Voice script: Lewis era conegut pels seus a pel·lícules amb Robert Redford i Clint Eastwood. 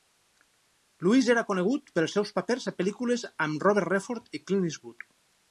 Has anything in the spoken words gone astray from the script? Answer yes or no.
yes